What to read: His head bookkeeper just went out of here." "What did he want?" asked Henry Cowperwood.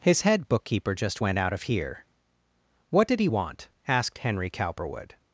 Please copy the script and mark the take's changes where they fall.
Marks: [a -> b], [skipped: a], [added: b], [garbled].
His head bookkeeper just went out of here." "What did he want?" asked Henry Cowperwood.